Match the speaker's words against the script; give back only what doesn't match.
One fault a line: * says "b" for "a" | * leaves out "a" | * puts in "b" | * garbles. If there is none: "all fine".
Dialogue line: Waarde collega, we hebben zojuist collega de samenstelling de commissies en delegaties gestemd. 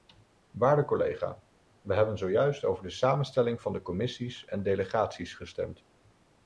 * says "over" for "collega"
* puts in "van"